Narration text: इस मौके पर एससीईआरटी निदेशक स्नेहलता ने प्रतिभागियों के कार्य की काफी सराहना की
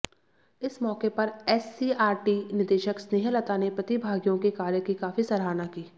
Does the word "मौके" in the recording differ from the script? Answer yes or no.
no